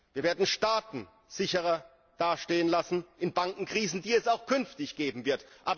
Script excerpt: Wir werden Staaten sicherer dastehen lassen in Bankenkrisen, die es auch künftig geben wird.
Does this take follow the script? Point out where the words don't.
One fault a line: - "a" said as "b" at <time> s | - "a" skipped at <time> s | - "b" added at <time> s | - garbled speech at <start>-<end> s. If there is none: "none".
none